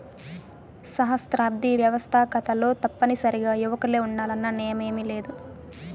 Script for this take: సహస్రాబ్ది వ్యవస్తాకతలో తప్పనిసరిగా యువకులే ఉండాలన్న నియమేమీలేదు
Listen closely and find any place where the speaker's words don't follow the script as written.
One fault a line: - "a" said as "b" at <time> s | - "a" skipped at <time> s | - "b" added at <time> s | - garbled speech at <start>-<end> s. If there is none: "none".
none